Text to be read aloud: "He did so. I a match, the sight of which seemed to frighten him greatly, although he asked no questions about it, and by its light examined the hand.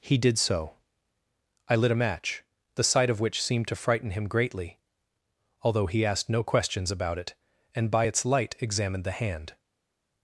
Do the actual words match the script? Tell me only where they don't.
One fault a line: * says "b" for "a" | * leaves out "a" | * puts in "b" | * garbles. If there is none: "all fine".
* puts in "lit"